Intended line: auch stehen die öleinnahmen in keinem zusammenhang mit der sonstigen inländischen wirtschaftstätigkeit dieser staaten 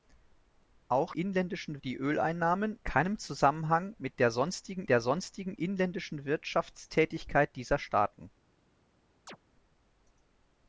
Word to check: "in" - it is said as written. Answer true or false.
false